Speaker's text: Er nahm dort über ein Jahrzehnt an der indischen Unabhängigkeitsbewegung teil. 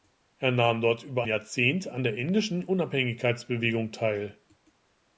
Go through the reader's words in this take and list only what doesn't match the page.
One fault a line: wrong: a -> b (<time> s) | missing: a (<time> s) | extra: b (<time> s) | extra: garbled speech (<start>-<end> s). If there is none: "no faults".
missing: ein (1.2 s)